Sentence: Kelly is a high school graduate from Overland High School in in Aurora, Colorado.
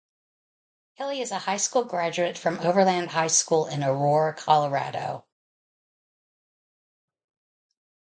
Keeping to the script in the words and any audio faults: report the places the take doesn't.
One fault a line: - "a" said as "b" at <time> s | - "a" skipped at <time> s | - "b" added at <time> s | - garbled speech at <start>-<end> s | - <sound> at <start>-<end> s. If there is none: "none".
- "in" skipped at 3.8 s